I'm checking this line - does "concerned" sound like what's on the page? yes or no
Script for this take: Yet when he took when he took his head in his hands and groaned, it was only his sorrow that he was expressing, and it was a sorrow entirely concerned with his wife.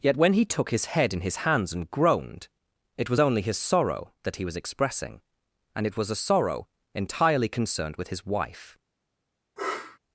yes